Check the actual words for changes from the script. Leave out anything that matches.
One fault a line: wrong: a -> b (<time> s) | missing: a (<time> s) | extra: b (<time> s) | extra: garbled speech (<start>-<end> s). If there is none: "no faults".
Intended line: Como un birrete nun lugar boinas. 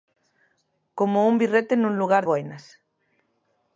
no faults